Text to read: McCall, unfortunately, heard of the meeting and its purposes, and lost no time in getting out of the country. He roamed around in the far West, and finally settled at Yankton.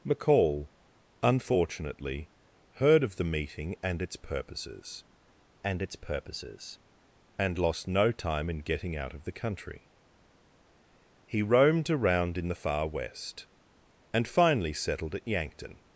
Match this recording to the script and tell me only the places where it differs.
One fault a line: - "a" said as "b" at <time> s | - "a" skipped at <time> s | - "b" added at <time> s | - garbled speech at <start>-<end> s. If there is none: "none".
- "its purposes and" added at 5.8 s